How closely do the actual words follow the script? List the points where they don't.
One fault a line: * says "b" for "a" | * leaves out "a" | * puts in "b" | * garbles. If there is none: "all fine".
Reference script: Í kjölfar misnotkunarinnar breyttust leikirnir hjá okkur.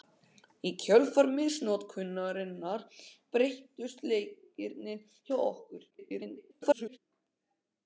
* garbles